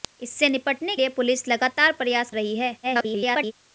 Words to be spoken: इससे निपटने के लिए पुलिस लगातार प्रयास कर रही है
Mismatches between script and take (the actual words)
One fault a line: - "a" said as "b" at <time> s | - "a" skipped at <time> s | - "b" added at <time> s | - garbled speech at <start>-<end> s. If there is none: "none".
- "के" skipped at 0.9 s
- "कर" skipped at 2.3 s
- garbled speech at 2.8-3.5 s